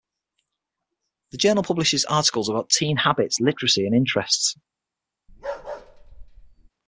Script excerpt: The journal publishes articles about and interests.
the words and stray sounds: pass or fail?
fail